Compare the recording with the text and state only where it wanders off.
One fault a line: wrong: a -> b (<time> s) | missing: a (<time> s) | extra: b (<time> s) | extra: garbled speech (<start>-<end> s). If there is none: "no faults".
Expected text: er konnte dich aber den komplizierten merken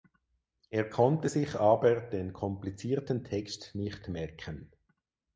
wrong: dich -> sich (1.3 s)
extra: text nicht (3.2 s)